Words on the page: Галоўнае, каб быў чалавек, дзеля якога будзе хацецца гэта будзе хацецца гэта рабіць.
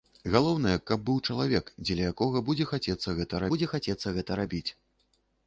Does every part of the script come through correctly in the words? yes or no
yes